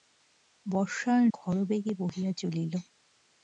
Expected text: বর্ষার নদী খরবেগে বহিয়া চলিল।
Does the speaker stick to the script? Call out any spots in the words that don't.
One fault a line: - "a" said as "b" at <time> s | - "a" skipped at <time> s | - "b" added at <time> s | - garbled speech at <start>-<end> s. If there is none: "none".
- "নদী" skipped at 1.2 s